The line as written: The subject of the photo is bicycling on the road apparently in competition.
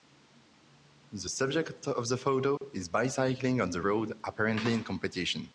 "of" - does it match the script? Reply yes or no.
yes